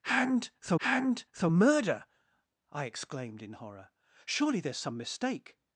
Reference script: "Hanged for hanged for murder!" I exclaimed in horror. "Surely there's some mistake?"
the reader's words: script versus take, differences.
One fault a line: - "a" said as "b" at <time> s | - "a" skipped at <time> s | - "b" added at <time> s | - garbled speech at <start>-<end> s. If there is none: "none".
none